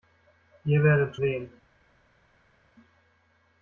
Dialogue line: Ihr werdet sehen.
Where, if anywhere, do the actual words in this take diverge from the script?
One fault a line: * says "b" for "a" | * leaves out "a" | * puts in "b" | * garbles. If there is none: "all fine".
all fine